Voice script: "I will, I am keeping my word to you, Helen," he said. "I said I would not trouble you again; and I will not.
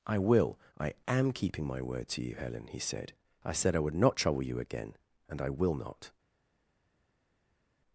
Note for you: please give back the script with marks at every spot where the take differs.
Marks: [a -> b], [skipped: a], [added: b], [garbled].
"I will, I am keeping my word to you, Helen," he said. "I said I would not trouble you again; and I will not.